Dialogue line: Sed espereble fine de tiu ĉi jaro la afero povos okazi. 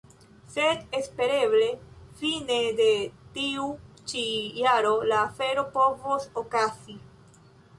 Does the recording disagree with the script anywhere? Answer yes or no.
no